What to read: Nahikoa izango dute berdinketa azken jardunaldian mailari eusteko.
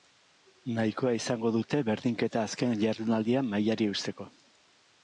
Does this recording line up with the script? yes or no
yes